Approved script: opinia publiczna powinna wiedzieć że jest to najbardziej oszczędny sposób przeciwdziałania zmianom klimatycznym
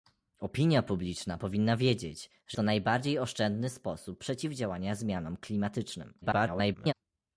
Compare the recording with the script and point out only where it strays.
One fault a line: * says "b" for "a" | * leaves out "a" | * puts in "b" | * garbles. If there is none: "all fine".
* leaves out "jest"
* garbles